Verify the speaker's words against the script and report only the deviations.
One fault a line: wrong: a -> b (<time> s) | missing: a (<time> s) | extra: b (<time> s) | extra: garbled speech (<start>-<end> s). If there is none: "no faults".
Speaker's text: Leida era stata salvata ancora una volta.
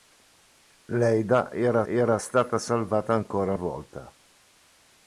extra: era (1.8 s)
missing: una (3.5 s)